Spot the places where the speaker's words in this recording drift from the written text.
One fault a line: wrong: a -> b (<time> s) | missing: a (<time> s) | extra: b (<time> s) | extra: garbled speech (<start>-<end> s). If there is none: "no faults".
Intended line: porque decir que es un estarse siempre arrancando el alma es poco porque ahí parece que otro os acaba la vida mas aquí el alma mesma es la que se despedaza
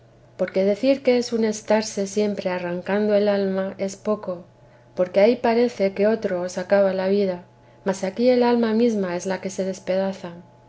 no faults